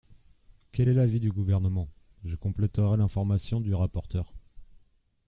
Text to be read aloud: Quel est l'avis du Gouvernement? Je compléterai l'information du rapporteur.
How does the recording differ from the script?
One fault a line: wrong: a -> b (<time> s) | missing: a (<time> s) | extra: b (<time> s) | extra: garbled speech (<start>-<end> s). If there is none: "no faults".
no faults